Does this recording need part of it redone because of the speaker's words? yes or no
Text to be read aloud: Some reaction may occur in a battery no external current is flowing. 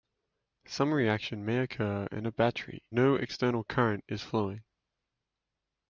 no